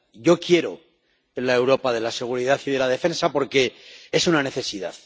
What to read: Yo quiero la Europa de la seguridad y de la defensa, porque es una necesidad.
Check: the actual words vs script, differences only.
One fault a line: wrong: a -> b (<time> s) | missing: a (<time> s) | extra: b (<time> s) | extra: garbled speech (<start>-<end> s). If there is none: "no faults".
no faults